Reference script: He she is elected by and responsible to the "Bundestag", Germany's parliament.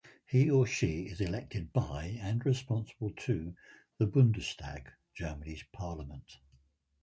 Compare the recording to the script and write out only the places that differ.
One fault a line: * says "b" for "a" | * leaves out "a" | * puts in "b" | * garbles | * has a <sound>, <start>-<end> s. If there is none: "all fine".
* puts in "or"